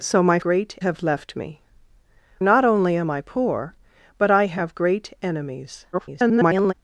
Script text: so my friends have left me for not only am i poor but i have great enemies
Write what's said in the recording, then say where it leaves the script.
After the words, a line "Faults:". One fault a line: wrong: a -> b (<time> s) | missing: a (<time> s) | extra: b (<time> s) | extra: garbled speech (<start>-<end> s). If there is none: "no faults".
so my great have left me not only am i poor but i have great enemies [garbled]
Faults:
wrong: friends -> great (0.4 s)
missing: for (1.6 s)
extra: garbled speech (5.9-6.7 s)